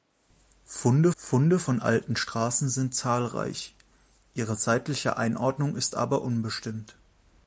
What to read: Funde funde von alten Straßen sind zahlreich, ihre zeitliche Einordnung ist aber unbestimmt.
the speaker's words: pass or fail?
pass